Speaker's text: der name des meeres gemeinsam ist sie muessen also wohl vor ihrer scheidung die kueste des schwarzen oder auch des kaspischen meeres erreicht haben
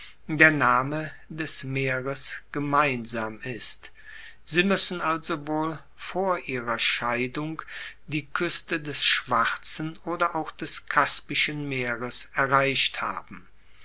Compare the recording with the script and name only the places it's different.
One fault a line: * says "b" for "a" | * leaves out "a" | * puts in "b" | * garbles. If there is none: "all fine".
all fine